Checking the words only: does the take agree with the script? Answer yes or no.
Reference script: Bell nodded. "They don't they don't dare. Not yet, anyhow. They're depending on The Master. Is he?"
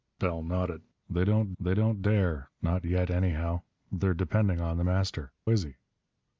yes